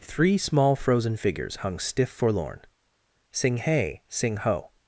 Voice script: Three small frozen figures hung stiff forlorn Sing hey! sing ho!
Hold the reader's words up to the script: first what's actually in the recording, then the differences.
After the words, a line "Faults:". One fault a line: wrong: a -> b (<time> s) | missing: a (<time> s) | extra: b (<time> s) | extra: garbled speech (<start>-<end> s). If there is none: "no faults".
Three small frozen figures hung stiff forlorn Sing hey! sing ho!
Faults:
no faults